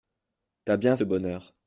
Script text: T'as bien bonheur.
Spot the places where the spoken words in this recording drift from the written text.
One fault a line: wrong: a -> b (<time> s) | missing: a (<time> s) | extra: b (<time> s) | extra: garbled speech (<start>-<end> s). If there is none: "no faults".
no faults